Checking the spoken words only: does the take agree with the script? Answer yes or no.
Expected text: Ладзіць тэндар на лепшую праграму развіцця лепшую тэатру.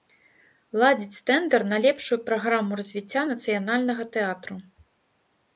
no